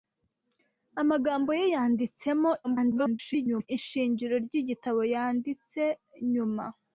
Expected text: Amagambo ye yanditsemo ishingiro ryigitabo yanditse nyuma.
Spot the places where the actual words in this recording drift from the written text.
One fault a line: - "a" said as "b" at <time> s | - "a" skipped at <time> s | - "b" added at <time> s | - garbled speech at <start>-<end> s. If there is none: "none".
- garbled speech at 2.6-3.7 s